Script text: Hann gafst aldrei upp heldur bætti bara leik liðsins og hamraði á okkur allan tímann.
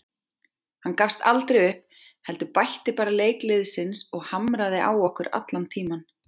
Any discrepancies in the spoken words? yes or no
no